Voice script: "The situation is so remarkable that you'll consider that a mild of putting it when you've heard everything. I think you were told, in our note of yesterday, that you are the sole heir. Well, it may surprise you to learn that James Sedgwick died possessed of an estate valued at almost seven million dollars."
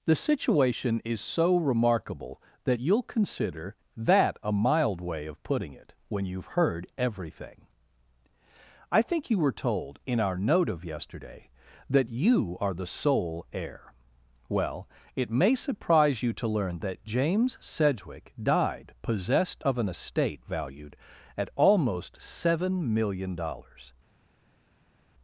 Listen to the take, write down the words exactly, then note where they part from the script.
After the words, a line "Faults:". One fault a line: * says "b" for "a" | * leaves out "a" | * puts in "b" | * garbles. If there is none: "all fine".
"The situation is so remarkable that you'll consider that a mild way of putting it when you've heard everything. I think you were told, in our note of yesterday, that you are the sole heir. Well, it may surprise you to learn that James Sedgwick died possessed of an estate valued at almost seven million dollars."
Faults:
* puts in "way"